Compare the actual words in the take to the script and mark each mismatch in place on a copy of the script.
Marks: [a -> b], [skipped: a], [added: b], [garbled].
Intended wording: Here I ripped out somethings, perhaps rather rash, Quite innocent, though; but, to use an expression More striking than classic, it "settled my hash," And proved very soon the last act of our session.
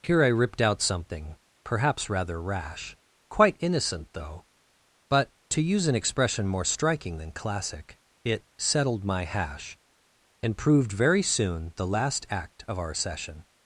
Here I ripped out [somethings, -> something] perhaps rather rash, Quite innocent, though; but, to use an expression More striking than classic, it "settled my hash," And proved very soon the last act of our session.